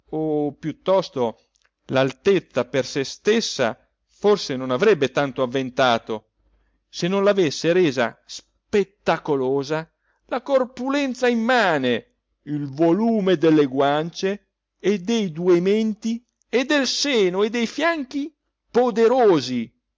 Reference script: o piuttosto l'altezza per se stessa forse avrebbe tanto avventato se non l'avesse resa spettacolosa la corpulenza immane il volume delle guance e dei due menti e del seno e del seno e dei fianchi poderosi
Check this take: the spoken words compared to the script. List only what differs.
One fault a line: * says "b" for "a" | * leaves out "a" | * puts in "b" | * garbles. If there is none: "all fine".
* puts in "non"
* leaves out "del seno e"